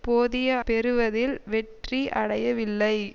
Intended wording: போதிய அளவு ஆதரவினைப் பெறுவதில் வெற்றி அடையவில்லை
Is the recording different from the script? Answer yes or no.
yes